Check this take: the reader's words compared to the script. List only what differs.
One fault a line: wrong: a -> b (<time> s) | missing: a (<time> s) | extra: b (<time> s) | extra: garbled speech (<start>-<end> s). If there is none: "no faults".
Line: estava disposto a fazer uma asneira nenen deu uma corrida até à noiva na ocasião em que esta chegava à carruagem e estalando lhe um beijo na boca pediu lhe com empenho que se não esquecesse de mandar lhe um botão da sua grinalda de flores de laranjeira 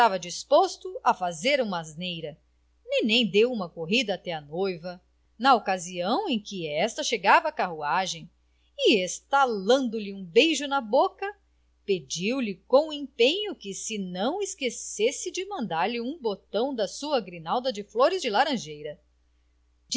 no faults